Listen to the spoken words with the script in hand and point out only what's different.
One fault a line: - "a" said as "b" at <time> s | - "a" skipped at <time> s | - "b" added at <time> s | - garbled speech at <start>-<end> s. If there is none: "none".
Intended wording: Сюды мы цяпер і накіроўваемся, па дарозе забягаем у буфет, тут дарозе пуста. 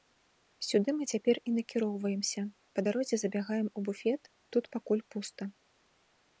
- "дарозе" said as "пакуль" at 4.8 s